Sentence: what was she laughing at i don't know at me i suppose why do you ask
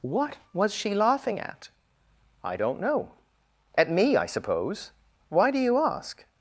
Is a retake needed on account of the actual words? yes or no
no